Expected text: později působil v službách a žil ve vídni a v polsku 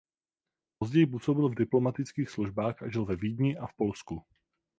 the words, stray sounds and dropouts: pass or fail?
fail